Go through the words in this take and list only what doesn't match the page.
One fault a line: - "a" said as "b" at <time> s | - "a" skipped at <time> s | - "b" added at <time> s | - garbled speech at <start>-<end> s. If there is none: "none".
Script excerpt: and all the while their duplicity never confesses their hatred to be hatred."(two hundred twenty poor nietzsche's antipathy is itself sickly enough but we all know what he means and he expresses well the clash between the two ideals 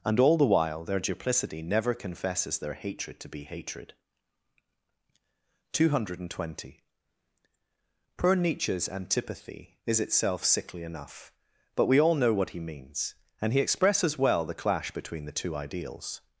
none